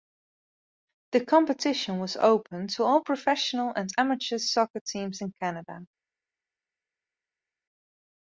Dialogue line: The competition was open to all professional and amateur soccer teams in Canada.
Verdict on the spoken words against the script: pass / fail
pass